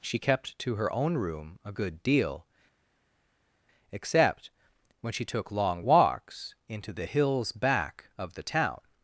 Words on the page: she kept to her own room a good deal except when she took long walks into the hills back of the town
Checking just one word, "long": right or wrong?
right